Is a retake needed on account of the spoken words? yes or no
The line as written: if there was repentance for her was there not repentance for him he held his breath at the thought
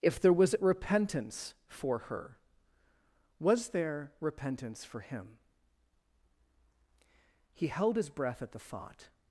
yes